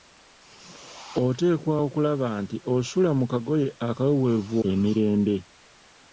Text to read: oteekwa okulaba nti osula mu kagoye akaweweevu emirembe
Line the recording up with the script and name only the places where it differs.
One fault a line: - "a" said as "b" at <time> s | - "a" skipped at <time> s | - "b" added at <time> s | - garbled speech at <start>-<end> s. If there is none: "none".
none